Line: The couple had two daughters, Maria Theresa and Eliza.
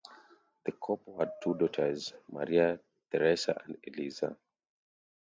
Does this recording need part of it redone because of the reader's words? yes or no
no